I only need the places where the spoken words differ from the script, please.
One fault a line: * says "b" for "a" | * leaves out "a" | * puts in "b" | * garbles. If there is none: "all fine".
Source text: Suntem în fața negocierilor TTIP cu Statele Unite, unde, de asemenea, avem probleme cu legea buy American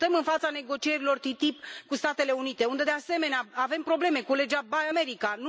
all fine